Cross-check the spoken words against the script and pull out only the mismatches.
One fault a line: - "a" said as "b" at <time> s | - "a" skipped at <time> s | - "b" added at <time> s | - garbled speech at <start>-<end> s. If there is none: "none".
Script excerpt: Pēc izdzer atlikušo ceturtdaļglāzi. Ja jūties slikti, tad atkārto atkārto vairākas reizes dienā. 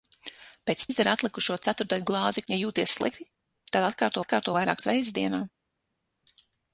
none